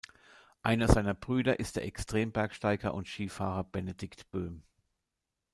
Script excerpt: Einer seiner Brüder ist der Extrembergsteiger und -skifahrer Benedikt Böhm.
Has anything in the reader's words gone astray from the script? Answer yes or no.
no